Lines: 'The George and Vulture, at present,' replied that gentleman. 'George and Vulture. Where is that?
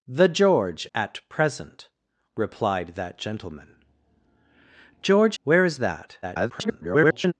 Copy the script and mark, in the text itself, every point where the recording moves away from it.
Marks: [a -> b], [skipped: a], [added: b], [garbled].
'The George [skipped: and Vulture,] at present,' replied that gentleman. 'George [skipped: and Vulture.] Where is that? [garbled]